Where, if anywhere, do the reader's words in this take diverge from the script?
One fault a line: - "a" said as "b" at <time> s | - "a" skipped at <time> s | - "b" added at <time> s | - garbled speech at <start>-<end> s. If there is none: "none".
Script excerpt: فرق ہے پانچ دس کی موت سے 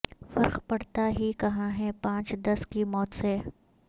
- "پڑتا ہی کہاں" added at 0.7 s